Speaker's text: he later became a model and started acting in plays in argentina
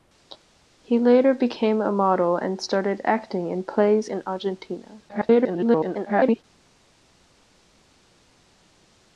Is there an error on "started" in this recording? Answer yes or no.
no